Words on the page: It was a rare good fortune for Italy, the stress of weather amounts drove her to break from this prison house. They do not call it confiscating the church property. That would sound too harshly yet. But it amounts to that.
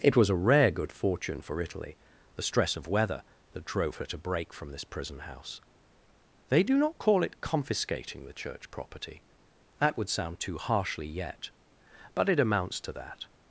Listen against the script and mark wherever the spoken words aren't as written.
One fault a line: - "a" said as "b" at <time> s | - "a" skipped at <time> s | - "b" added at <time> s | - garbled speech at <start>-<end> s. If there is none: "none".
- "amounts" said as "that" at 3.5 s